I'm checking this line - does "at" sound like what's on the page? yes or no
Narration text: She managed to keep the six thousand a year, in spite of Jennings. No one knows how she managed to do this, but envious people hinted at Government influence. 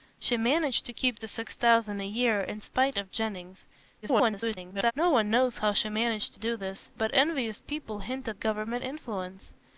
no